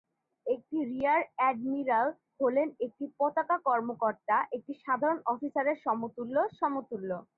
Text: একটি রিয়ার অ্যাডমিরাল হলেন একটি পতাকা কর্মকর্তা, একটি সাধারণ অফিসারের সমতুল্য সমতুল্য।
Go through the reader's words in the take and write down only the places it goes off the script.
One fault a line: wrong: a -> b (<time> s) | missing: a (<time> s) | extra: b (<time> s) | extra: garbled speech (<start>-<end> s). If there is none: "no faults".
no faults